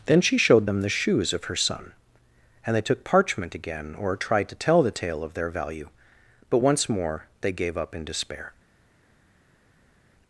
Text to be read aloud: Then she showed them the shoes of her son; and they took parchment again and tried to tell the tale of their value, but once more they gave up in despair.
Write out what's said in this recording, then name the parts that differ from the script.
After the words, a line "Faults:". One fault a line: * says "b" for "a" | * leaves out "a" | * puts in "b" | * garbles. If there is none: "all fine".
Then she showed them the shoes of her son; and they took parchment again or tried to tell the tale of their value, but once more they gave up in despair.
Faults:
* says "or" for "and"